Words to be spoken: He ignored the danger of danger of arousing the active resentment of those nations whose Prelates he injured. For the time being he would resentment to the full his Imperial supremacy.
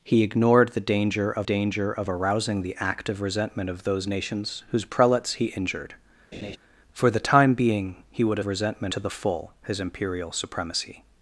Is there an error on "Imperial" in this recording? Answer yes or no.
no